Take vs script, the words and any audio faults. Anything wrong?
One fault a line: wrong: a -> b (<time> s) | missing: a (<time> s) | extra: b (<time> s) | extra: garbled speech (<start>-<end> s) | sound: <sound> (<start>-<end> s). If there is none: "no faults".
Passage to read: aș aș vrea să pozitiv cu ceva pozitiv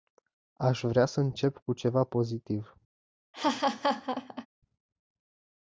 missing: aș (0.8 s)
wrong: pozitiv -> încep (1.2 s)
sound: laugh (3.3-4.5 s)